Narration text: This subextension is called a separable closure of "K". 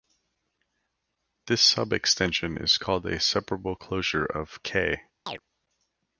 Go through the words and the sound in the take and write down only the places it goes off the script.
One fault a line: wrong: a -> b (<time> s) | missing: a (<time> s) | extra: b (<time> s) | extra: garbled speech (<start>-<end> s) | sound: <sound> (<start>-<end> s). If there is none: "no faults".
sound: chirp (5.3-5.4 s)